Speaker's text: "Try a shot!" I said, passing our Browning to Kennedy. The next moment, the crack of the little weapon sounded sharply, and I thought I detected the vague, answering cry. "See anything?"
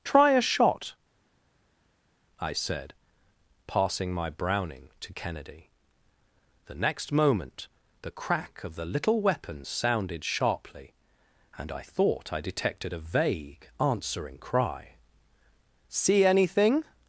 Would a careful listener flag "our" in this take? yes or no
yes